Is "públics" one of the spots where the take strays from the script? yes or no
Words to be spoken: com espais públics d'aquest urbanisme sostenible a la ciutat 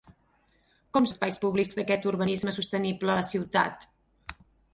no